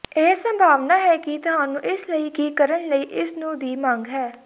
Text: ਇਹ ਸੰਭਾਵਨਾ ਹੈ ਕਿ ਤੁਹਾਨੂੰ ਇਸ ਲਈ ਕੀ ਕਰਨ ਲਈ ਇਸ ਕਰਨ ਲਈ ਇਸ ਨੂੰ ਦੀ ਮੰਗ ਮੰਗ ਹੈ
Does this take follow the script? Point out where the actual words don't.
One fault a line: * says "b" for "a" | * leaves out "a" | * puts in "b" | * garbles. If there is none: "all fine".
* leaves out "ਕਰਨ ਲਈ ਇਸ"
* leaves out "ਮੰਗ"